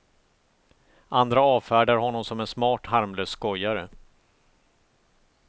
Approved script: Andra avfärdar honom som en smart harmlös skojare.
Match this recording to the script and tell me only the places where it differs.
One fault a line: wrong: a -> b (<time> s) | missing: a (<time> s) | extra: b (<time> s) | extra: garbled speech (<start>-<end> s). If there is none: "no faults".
no faults